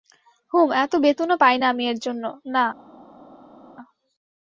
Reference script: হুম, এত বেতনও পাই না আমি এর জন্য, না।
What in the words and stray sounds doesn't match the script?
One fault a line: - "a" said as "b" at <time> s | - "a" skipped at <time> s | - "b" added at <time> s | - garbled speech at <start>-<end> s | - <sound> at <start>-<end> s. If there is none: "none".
none